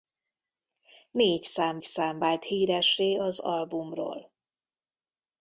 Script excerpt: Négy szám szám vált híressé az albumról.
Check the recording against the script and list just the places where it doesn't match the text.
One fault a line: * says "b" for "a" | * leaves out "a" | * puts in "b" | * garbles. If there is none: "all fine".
all fine